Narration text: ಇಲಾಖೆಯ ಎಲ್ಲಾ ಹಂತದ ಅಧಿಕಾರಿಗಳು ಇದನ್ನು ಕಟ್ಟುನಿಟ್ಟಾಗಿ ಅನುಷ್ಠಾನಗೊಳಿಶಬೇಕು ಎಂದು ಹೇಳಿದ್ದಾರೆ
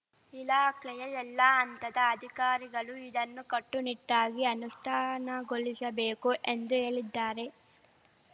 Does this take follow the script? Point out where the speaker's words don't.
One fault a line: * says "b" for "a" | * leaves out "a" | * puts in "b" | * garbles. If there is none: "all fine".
all fine